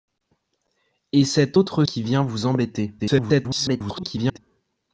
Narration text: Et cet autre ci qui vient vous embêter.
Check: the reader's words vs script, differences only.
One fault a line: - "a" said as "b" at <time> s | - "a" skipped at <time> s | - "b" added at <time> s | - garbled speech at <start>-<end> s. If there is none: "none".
- "ci" skipped at 1.8 s
- garbled speech at 3.0-4.4 s